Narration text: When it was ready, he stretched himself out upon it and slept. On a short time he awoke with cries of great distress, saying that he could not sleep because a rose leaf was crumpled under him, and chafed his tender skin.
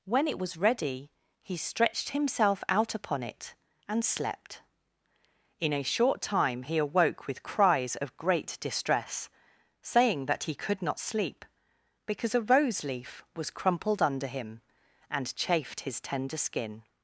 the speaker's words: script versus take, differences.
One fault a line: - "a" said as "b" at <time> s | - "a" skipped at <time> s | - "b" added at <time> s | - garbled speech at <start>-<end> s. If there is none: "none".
- "On" said as "In" at 5.6 s